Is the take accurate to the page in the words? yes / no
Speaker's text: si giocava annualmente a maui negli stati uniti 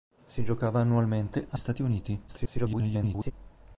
no